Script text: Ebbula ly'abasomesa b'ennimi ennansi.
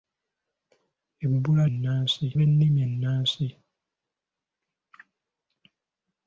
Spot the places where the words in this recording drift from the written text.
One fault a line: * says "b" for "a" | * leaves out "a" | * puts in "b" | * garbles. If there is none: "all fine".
* says "ennansi" for "ly'abasomesa"